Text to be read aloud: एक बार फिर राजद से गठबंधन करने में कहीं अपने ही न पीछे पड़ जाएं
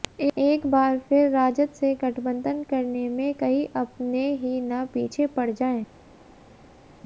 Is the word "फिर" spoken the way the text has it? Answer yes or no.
yes